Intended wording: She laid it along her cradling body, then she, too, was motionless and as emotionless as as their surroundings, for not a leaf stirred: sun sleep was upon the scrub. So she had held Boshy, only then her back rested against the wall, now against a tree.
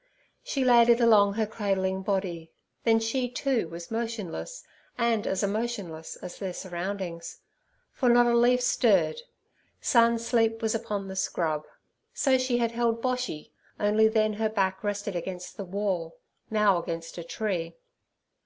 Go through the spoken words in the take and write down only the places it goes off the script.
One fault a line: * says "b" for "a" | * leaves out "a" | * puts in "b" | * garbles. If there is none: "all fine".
* leaves out "as"